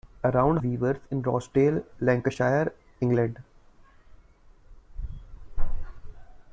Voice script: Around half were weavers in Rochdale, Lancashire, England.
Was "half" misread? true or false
true